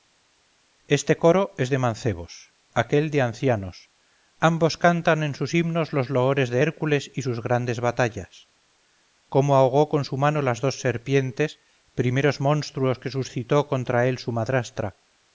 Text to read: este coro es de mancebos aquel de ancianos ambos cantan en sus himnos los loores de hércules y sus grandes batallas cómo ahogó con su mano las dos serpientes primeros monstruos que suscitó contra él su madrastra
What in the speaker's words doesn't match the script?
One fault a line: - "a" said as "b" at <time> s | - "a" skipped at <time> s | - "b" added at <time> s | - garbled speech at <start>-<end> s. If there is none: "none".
none